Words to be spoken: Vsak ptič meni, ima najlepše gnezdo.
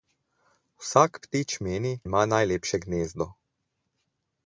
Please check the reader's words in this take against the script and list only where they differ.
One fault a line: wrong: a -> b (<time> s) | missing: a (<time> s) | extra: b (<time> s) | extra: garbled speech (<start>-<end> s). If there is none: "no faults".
no faults